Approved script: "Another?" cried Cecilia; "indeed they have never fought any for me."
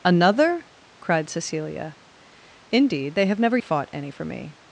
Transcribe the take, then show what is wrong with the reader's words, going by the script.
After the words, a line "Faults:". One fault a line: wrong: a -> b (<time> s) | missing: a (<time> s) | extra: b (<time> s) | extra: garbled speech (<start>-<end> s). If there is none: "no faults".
"Another?" cried Cecilia; "indeed they have never fought any for me."
Faults:
no faults